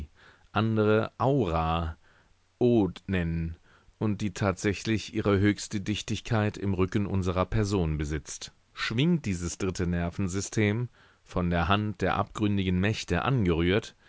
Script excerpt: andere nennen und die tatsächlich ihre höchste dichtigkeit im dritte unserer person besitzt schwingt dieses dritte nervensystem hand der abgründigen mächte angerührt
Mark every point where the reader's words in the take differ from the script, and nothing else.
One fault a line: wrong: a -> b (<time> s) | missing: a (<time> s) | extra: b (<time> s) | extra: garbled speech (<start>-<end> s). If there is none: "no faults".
extra: aura od (1.2 s)
wrong: dritte -> rücken (6.7 s)
extra: von der (11.2 s)